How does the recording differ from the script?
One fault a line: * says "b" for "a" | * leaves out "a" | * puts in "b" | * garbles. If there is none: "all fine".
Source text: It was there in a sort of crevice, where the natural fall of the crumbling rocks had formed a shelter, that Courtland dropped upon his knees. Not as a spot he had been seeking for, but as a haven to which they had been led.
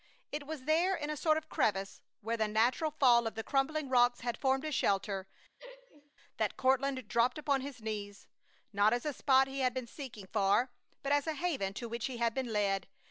* says "he" for "they"